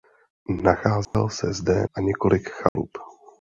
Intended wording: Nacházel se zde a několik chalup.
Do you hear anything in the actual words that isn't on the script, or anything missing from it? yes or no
no